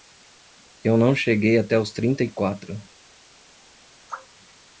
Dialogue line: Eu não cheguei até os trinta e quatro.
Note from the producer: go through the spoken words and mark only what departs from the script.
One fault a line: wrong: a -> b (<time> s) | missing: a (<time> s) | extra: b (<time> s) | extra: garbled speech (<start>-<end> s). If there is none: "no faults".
no faults